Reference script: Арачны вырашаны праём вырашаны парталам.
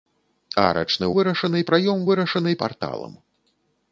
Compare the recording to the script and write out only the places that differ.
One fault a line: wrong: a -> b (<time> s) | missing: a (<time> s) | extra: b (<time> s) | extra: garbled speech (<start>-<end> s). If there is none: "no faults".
no faults